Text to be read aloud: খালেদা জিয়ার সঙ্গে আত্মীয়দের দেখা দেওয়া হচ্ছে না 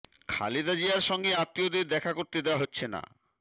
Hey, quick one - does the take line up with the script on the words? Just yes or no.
no